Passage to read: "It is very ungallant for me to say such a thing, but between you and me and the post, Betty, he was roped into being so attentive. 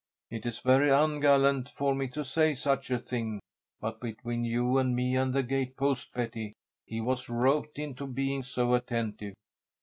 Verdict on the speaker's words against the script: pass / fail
fail